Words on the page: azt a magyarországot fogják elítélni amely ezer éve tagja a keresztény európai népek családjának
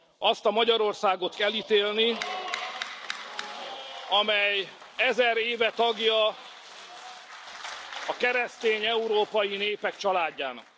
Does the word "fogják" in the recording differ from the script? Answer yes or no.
yes